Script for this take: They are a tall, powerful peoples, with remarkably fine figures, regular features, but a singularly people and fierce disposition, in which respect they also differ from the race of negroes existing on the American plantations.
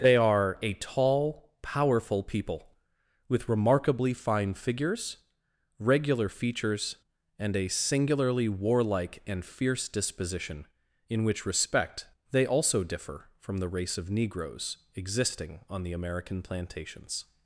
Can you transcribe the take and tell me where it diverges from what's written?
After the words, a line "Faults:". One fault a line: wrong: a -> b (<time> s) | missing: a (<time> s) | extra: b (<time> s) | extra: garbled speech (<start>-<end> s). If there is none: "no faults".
They are a tall, powerful people, with remarkably fine figures, regular features, and a singularly warlike and fierce disposition, in which respect they also differ from the race of negroes existing on the American plantations.
Faults:
wrong: peoples -> people (2.2 s)
wrong: but -> and (7.4 s)
wrong: people -> warlike (8.5 s)